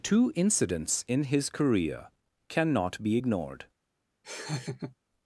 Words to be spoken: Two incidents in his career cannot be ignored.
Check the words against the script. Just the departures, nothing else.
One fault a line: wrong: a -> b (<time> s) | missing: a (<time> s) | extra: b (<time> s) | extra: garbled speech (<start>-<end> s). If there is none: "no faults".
no faults